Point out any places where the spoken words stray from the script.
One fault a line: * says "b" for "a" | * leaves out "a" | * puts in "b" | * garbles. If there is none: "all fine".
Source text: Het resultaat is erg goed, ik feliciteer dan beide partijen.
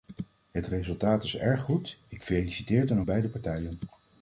all fine